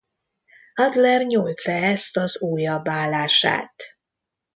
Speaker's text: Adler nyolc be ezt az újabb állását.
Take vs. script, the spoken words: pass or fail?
pass